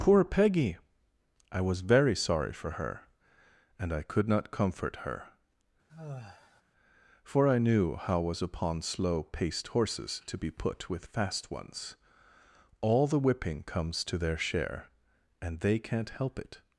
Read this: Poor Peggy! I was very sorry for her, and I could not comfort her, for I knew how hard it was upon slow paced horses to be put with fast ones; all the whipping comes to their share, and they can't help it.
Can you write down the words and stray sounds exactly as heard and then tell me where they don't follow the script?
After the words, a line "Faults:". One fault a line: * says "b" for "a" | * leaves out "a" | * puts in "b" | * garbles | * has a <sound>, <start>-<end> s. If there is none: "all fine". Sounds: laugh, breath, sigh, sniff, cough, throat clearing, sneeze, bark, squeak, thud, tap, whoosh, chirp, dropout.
Poor Peggy! I was very sorry for her, and I could not comfort her, for I knew how was upon slow paced horses to be put with fast ones; all the whipping comes to their share, and they can't help it.
Faults:
* has a sigh, 5.9-6.6 s
* leaves out "hard it"